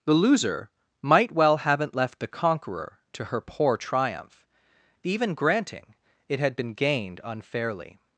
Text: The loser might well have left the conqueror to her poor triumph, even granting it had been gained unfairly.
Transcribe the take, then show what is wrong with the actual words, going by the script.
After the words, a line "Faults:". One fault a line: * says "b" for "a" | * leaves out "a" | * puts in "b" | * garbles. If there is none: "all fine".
The loser might well haven't left the conqueror to her poor triumph, even granting it had been gained unfairly.
Faults:
* says "haven't" for "have"